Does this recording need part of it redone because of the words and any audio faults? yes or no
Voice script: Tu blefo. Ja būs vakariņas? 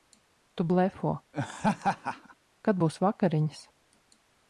yes